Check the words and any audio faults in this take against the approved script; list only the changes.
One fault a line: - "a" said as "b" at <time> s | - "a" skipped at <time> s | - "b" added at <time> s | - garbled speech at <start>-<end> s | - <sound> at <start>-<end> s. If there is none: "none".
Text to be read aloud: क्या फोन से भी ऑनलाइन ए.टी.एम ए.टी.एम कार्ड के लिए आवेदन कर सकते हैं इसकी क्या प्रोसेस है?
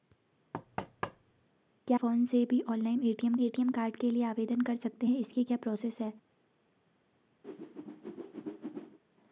- thud at 0.5-1.5 s
- whoosh at 7.4-9.0 s